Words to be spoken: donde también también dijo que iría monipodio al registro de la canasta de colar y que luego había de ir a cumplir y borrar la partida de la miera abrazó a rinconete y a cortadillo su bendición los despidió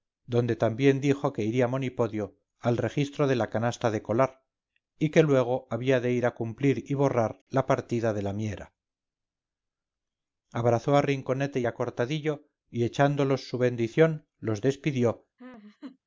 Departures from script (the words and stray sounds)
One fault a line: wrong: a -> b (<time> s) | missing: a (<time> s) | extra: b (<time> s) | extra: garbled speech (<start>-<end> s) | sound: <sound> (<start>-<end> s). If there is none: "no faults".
missing: también (1.0 s)
extra: y echándolos (12.7 s)
sound: laugh (15.4-16.0 s)